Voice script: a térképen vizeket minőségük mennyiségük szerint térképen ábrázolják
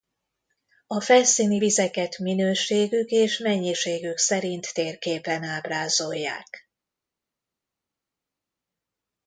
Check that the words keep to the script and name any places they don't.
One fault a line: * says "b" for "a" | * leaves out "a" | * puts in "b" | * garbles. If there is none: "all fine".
* says "felszíni" for "térképen"
* puts in "és"